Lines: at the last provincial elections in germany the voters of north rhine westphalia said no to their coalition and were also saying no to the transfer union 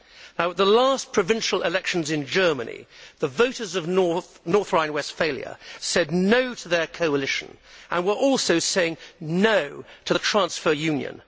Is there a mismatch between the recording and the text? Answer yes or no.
no